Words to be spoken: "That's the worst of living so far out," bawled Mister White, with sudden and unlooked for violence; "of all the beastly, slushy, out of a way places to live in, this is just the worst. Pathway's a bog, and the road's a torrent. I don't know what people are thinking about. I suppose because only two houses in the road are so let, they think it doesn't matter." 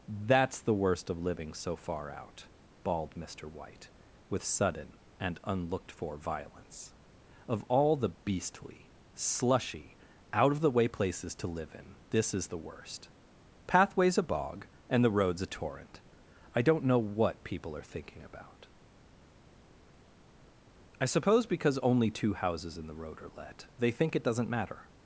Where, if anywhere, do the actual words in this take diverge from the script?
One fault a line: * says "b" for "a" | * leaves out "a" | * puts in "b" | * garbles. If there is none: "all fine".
* says "the" for "a"
* leaves out "just"
* leaves out "so"